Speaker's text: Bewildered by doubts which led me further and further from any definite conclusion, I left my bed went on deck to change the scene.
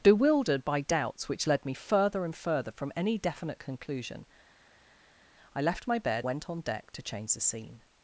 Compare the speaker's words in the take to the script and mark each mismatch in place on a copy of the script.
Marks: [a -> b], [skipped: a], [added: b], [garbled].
Bewildered by doubts which led me further and further from any definite conclusion, I left my bed went on deck to change the scene.